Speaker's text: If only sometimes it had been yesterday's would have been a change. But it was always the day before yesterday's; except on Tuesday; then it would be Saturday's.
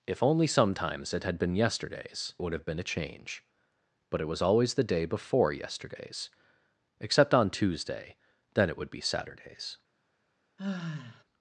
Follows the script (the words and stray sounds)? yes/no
no